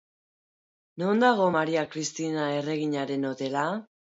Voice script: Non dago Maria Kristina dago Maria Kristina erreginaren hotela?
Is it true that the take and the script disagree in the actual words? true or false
true